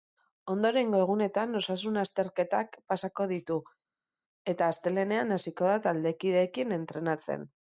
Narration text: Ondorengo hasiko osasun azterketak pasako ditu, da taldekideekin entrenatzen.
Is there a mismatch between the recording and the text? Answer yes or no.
yes